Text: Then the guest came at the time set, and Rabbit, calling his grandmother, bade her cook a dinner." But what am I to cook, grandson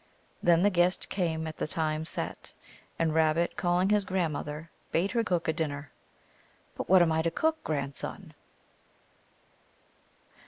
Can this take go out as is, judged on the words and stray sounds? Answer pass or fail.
pass